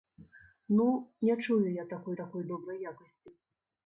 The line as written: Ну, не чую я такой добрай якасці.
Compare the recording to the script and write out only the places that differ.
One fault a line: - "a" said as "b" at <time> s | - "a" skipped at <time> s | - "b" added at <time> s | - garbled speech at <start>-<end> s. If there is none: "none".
- "такой" added at 2.1 s